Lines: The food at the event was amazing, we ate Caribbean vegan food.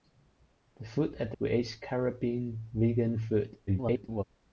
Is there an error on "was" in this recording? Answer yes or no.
yes